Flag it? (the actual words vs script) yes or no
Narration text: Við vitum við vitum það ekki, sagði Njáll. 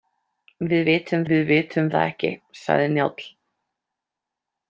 no